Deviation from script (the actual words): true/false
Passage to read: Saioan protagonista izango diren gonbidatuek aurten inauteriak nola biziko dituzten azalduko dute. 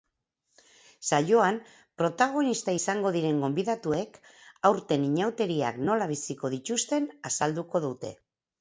false